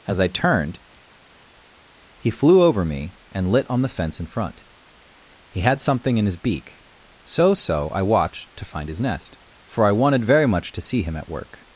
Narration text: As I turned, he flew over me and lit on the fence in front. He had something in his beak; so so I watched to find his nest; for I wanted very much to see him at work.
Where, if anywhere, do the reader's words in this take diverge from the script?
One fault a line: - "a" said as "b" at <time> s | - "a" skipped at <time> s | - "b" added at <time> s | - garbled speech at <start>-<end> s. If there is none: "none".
none